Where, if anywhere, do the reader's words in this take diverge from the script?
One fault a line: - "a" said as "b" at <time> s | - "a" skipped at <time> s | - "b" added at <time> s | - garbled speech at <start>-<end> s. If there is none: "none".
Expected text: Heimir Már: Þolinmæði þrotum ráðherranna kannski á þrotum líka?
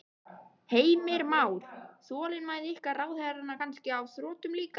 - "þrotum" said as "ykkar" at 2.8 s